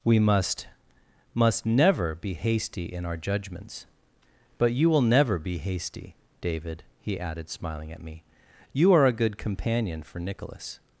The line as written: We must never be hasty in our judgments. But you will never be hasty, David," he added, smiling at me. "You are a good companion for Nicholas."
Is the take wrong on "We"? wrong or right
right